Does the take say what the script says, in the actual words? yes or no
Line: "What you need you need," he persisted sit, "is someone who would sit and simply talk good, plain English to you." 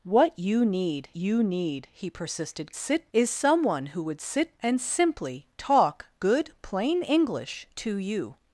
yes